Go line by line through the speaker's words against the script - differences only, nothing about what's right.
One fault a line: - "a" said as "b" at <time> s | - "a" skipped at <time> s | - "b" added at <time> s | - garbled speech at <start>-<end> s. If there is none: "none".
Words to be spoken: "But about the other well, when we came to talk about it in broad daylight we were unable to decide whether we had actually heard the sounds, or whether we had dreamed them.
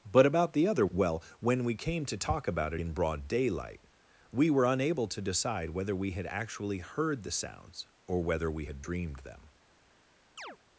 none